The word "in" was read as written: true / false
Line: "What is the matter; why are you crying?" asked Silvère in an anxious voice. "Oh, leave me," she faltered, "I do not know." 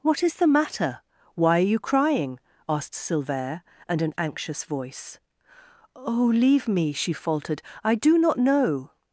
false